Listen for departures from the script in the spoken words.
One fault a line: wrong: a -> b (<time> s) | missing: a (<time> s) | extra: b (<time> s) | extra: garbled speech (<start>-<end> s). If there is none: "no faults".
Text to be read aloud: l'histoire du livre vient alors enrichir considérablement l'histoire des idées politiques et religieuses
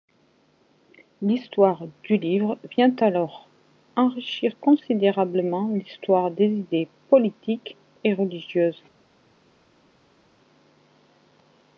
no faults